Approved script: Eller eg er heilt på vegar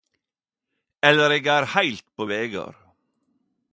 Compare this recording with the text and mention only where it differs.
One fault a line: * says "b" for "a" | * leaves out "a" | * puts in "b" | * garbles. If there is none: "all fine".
all fine